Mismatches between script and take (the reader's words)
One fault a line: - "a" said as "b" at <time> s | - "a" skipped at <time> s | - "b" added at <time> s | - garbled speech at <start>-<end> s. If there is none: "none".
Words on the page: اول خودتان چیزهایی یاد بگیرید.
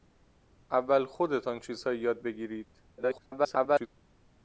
- garbled speech at 2.9-3.9 s